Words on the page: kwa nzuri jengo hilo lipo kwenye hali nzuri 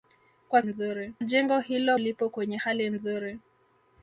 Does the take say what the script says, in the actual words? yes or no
yes